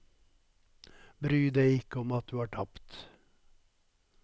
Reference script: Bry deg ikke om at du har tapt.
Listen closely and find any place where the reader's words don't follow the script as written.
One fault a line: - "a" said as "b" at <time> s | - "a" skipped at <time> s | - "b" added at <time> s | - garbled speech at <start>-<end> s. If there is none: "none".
none